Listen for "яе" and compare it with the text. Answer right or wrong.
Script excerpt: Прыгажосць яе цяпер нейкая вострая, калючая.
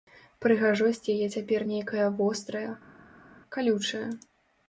right